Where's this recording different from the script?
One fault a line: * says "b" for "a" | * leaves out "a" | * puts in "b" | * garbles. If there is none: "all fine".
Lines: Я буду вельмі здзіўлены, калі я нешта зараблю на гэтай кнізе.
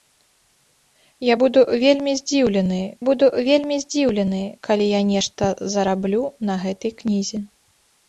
* puts in "буду вельмі здзіўлены"